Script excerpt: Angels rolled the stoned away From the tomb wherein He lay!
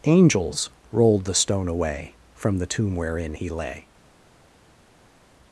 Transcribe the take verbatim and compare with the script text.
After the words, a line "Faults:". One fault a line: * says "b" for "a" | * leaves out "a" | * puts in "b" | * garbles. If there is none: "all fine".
Angels rolled the stone away From the tomb wherein He lay!
Faults:
* says "stone" for "stoned"